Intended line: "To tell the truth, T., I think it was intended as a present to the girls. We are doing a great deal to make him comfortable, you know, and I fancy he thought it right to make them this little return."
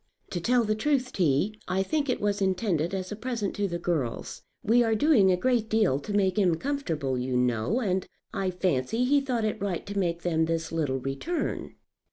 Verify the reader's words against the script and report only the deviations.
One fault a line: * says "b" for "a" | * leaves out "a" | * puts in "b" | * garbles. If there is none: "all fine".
all fine